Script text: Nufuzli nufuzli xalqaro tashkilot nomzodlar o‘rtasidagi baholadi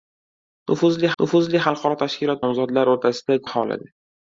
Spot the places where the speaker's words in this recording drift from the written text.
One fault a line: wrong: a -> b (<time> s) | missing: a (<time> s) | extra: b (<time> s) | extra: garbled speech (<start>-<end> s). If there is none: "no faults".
no faults